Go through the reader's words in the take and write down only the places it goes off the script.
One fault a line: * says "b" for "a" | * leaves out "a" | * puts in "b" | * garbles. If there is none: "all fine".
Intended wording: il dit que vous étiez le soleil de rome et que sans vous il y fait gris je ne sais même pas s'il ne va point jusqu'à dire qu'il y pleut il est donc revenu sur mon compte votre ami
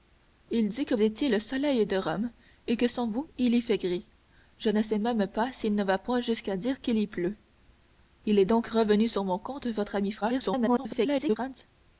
* leaves out "vous"
* garbles